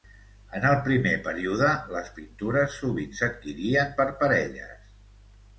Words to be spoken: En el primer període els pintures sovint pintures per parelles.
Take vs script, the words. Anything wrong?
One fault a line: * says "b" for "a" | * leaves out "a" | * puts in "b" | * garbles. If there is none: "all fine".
* says "les" for "els"
* says "s'adquirien" for "pintures"